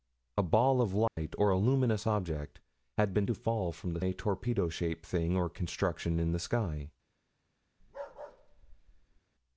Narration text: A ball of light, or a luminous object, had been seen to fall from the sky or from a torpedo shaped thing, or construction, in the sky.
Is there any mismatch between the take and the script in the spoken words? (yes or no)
yes